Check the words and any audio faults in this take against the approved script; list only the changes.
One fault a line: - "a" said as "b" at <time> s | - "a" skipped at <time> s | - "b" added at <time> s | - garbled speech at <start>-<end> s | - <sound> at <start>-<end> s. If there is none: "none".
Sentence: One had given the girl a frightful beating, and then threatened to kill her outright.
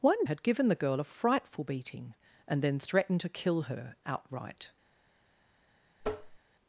- tap at 6.0-6.4 s